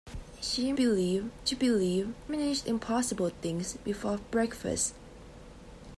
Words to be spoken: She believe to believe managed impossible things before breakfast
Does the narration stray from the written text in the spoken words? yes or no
no